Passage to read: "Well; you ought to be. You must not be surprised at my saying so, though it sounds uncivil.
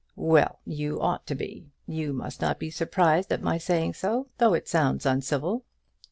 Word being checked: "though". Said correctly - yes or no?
yes